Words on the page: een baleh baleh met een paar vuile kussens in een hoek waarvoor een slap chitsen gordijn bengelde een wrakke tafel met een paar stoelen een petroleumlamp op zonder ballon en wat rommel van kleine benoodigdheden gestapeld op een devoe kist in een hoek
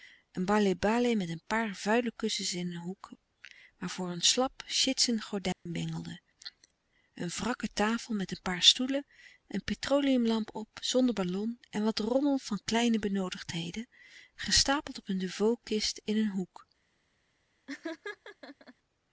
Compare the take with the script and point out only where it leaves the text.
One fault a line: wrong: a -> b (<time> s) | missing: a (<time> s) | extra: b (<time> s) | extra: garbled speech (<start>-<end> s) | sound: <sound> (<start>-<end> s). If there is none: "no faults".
sound: dropout (5.5-5.7 s)
sound: laugh (17.7-18.7 s)